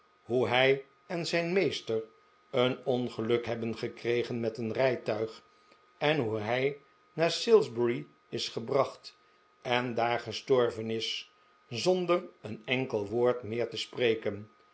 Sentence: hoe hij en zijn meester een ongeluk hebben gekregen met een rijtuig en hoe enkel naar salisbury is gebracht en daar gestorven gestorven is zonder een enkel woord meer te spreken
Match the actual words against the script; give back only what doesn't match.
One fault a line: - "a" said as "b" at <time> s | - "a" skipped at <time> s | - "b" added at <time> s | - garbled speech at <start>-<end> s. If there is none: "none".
- "enkel" said as "hij" at 6.4 s
- "gestorven" skipped at 10.9 s